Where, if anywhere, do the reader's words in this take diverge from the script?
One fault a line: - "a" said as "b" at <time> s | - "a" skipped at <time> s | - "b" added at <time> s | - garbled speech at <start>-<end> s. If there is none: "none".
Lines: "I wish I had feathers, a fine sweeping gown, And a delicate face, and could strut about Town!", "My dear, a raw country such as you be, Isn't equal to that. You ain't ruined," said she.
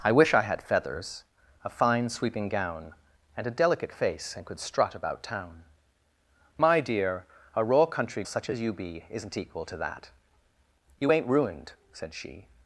none